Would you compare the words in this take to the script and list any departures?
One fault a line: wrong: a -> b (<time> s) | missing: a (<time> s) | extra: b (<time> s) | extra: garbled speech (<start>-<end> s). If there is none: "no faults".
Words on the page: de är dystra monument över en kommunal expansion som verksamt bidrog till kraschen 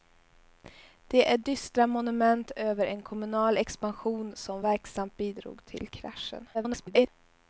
extra: garbled speech (6.5-7.1 s)